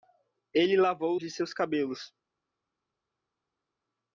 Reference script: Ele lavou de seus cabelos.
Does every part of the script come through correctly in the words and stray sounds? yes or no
yes